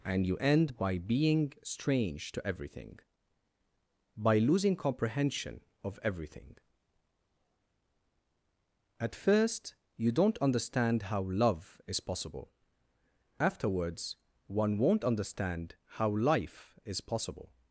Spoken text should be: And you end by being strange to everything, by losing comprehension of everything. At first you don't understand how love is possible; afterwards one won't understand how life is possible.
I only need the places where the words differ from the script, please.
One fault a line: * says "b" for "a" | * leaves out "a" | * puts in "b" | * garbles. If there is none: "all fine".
all fine